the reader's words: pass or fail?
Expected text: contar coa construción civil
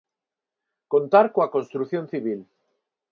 pass